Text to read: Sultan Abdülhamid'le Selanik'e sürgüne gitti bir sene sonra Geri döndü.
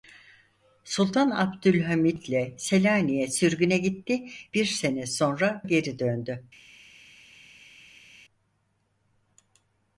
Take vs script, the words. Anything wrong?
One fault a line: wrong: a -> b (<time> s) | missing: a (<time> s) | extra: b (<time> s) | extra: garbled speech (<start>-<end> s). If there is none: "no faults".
no faults